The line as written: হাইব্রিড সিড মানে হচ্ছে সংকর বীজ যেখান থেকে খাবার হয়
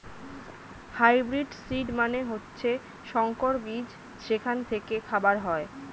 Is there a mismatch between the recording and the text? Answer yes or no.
no